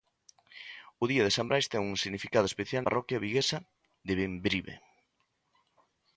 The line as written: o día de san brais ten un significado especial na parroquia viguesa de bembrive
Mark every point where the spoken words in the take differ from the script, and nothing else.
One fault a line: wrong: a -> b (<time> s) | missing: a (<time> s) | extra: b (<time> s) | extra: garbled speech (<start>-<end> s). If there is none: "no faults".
missing: na (2.8 s)